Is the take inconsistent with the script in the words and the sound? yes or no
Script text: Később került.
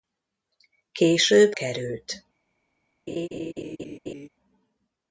yes